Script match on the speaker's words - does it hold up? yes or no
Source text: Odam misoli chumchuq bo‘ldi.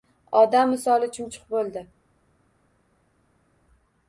yes